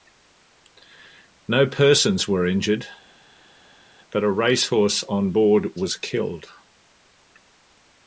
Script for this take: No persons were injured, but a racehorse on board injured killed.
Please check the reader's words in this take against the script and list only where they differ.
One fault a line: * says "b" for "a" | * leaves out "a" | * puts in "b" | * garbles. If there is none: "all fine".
* says "was" for "injured"